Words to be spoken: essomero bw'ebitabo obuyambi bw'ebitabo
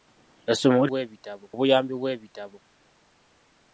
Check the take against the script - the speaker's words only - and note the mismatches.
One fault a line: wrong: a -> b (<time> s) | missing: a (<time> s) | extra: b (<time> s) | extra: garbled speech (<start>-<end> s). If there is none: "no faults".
no faults